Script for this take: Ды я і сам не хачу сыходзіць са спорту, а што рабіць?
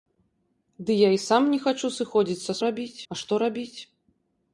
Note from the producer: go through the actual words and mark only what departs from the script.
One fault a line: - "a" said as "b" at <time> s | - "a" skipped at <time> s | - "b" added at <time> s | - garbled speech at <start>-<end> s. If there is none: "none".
- "спорту" said as "рабіць" at 2.7 s